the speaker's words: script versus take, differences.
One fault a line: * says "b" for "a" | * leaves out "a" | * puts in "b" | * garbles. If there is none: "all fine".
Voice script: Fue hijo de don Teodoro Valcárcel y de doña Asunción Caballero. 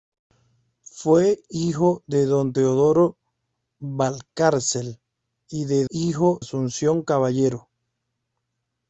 * says "hijo" for "doña"